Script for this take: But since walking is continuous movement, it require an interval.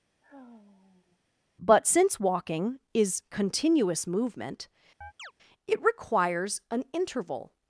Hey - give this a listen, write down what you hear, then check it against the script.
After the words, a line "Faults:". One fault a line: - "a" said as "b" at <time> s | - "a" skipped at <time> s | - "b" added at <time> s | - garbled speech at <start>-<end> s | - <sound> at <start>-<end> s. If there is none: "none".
But since walking is continuous movement, it requires an interval.
Faults:
- sigh at 0.2-1.2 s
- chirp at 5.0-5.3 s
- "require" said as "requires" at 5.8 s